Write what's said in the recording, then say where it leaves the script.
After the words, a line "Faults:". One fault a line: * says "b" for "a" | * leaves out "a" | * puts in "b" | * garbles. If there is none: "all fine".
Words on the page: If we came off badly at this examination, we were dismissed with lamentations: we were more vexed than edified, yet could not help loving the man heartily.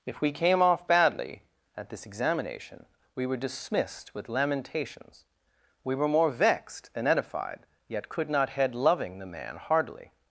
If we came off badly at this examination, we were dismissed with lamentations: we were more vexed than edified, yet could not head loving the man heartily.
Faults:
* says "head" for "help"